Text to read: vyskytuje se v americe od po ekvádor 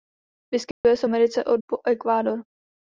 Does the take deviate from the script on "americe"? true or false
false